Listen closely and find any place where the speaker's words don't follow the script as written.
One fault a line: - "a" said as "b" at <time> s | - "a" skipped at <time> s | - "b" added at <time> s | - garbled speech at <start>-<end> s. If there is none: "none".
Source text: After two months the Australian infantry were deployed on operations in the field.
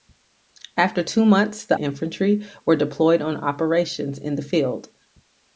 - "Australian" skipped at 1.8 s